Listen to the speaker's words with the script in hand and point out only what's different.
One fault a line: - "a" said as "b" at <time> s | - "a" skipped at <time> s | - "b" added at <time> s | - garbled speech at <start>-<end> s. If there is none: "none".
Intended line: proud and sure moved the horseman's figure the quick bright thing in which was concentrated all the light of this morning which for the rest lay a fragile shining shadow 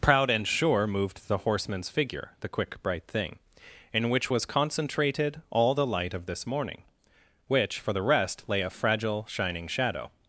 none